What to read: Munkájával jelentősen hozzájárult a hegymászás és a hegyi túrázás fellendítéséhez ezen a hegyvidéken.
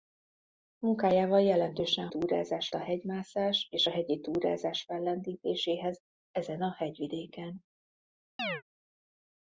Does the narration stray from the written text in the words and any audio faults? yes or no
yes